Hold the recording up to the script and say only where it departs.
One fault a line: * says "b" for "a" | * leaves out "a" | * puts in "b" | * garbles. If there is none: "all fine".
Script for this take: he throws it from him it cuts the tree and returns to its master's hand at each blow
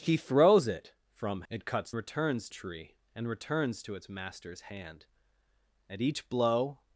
* leaves out "him"
* says "returns" for "the"